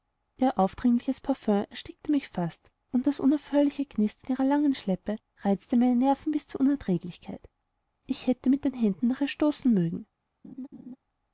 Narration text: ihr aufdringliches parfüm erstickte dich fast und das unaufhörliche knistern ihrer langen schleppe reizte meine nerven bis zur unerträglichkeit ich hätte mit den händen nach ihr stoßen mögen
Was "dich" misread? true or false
true